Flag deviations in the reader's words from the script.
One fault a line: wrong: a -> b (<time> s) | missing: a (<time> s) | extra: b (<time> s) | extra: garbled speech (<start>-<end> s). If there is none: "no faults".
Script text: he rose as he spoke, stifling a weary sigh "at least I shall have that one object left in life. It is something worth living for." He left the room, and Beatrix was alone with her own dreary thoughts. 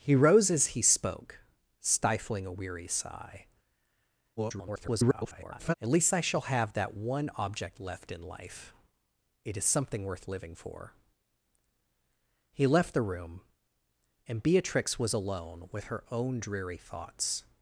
extra: garbled speech (4.4-5.7 s)